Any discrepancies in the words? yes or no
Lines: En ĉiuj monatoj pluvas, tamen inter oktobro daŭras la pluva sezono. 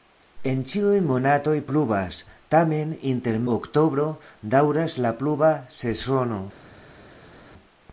no